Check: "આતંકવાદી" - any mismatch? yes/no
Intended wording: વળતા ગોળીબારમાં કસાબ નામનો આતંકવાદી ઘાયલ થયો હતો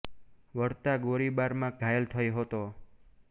yes